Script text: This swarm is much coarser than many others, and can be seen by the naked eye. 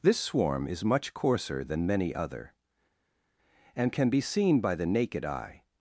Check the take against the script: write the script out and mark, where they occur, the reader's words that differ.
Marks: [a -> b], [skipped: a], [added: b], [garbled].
This swarm is much coarser than many [others, -> other] and can be seen by the naked eye.